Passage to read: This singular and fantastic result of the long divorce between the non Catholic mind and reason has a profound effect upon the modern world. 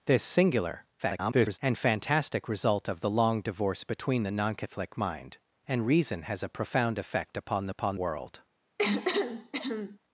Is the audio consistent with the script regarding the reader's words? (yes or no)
no